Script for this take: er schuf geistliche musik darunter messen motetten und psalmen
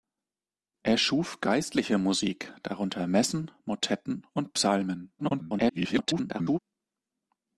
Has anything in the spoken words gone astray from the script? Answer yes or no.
yes